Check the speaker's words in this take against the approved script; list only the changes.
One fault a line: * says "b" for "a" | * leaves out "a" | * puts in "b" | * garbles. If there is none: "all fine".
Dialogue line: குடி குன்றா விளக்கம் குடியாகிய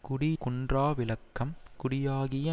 all fine